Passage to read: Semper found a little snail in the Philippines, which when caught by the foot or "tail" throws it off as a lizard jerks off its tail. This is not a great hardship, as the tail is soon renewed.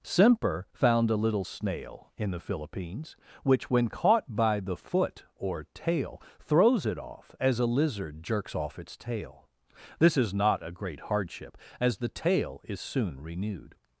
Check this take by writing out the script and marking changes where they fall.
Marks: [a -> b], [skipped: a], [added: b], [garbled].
Semper found a little snail in the Philippines, which when caught by the foot or "tail" throws it off as a lizard jerks off its tail. This is not a great hardship, as the tail is soon renewed.